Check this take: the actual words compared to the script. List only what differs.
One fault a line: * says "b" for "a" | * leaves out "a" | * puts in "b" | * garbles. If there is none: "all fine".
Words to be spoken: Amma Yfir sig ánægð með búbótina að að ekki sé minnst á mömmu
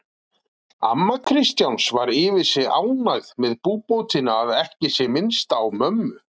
* puts in "Kristjáns var"
* leaves out "að"